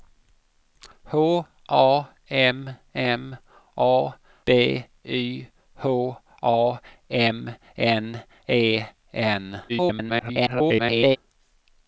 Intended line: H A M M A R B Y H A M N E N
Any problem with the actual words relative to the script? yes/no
yes